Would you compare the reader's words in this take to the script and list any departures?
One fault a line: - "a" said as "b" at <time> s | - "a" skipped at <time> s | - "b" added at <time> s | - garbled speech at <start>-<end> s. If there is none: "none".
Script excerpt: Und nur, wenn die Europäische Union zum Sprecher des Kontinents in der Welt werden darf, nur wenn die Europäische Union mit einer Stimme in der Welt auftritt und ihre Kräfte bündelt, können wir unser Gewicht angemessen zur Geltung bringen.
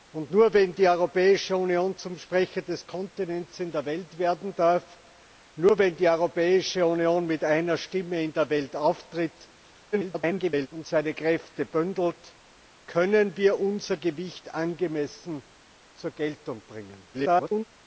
- garbled speech at 9.9-10.7 s
- garbled speech at 17.1-17.6 s